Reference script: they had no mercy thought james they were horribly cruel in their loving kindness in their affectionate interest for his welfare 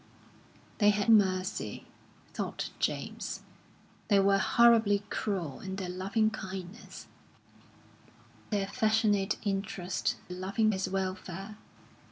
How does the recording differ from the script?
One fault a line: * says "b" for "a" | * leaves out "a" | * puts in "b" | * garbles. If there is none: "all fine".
* leaves out "no"
* leaves out "in"
* says "loving" for "for"